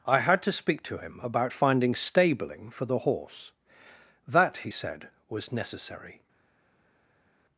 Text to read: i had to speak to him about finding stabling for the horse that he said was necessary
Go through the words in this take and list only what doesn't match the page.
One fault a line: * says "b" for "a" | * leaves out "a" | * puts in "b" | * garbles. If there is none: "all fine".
all fine